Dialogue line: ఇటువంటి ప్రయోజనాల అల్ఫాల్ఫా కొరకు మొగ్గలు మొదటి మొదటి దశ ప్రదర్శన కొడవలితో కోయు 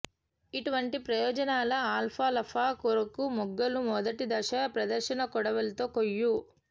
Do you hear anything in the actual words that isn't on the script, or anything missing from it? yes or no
yes